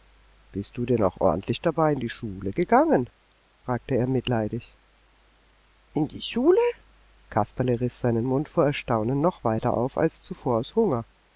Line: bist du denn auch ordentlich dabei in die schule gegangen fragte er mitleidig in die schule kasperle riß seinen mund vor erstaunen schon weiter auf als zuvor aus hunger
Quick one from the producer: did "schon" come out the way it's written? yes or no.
no